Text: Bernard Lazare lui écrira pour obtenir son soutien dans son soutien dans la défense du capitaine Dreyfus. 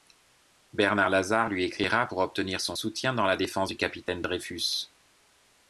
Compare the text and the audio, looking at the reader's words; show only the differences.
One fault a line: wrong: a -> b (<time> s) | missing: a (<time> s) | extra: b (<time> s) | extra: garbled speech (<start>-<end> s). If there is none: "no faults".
missing: son soutien dans (3.2 s)